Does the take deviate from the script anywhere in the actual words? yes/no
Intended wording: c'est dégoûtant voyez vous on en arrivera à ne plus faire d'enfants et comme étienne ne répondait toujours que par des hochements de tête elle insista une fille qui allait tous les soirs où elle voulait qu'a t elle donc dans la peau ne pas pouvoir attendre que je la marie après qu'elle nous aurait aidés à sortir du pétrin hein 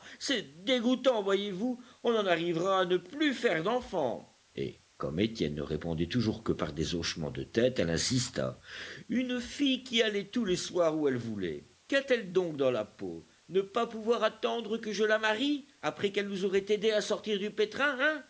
no